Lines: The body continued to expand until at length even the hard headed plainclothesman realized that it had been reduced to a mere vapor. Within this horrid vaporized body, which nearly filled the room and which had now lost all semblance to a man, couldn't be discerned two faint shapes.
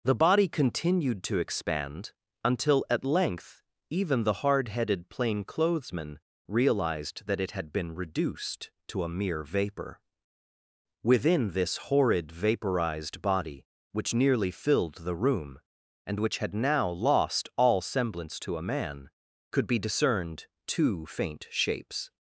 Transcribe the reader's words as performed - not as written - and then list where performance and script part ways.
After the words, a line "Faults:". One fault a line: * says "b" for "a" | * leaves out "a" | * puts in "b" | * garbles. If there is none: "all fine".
The body continued to expand until at length even the hard headed plainclothesman realized that it had been reduced to a mere vapor. Within this horrid vaporized body, which nearly filled the room and which had now lost all semblance to a man, could be discerned two faint shapes.
Faults:
* says "could" for "couldn't"